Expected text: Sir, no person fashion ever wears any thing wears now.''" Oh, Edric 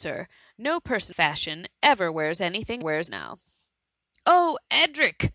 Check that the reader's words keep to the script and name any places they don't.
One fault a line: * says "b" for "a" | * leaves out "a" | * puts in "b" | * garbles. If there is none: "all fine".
all fine